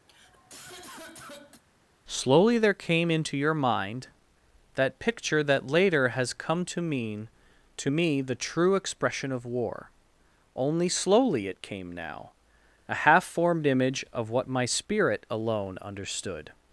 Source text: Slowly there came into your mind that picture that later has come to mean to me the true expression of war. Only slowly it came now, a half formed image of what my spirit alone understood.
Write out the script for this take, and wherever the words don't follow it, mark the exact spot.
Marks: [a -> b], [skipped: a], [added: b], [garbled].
Slowly there came into your mind that picture that later has come to mean to me the true expression of war. Only slowly it came now, a half formed image of what my spirit alone understood.